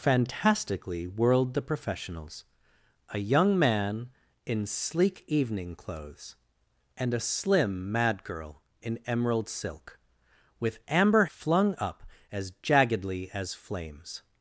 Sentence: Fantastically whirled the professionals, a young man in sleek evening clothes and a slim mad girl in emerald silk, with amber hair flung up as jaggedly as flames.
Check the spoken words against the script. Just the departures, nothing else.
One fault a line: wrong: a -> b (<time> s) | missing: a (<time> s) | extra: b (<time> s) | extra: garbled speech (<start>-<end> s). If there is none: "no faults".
missing: hair (11.2 s)